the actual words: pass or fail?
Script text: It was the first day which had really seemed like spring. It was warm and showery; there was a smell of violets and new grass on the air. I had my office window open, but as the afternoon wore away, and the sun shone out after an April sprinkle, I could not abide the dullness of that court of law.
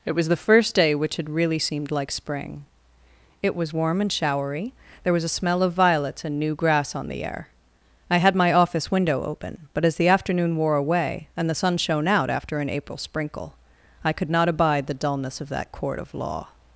pass